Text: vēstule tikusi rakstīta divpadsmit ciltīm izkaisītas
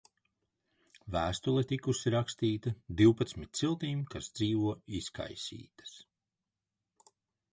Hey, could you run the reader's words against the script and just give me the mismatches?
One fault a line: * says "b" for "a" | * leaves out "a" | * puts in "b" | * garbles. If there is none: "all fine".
* puts in "kas dzīvo"